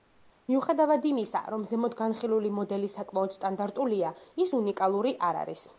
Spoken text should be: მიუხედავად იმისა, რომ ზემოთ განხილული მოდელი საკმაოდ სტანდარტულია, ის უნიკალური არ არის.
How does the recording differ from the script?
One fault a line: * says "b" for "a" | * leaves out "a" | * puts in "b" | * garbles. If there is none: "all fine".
all fine